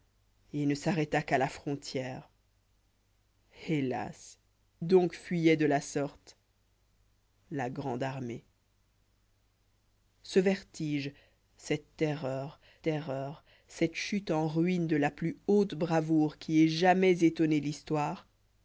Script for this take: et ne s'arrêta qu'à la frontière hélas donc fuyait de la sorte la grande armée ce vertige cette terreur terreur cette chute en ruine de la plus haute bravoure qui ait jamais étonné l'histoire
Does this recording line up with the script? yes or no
yes